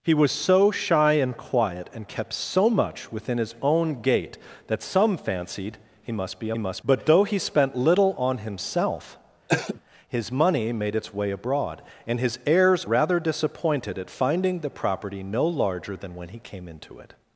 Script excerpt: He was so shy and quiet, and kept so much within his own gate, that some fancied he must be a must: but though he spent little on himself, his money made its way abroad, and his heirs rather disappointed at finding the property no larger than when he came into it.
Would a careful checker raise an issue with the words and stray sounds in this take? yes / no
yes